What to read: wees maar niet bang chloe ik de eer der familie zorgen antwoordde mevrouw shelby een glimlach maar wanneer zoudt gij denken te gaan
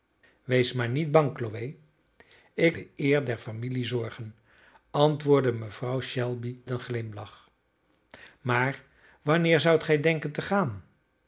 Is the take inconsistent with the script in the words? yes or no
no